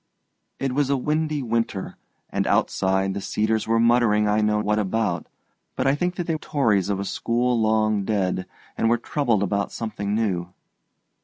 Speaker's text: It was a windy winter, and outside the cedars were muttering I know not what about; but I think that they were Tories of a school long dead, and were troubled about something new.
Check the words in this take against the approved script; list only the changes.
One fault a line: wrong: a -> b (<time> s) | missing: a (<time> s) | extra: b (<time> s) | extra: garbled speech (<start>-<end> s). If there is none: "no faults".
missing: not (4.6 s)
missing: were (6.3 s)